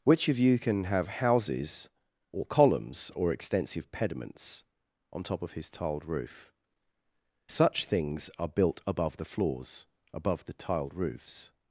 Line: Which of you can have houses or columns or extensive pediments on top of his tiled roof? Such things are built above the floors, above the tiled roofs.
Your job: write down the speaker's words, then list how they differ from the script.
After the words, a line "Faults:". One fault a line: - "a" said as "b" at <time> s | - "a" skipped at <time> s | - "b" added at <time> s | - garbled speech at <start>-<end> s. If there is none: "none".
Which of you can have houses or columns or extensive pediments on top of his tiled roof? Such things are built above the floors, above the tiled roofs.
Faults:
none